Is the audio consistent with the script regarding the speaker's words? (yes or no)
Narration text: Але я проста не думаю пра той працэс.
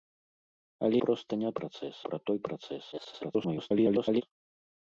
no